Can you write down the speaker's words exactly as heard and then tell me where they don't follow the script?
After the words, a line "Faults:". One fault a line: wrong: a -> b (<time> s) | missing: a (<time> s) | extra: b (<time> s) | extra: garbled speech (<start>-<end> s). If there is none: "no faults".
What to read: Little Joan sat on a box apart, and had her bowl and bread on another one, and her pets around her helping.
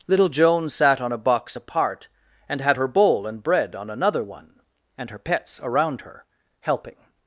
Little Joan sat on a box apart, and had her bowl and bread on another one, and her pets around her helping.
Faults:
no faults